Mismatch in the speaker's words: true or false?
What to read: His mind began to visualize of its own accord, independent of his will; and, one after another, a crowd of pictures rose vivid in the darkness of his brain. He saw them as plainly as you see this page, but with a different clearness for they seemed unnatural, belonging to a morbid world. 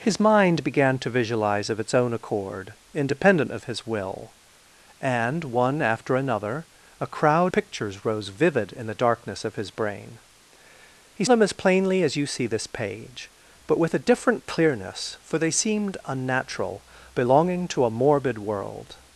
true